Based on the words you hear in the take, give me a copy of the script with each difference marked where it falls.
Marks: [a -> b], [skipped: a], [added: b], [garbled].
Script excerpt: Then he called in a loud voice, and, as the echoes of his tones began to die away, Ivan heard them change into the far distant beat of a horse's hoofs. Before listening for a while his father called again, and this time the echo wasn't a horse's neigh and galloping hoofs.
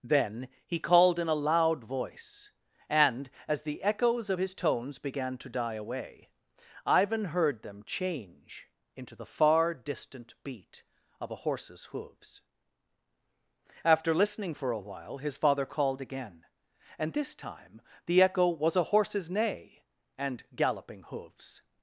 Then he called in a loud voice, and, as the echoes of his tones began to die away, Ivan heard them change into the far distant beat of a horse's hoofs. [Before -> After] listening for a while his father called again, and this time the echo [wasn't -> was] a horse's neigh and galloping hoofs.